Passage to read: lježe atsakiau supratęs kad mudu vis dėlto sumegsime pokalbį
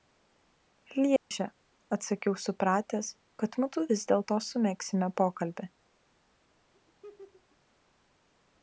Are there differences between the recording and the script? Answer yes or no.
no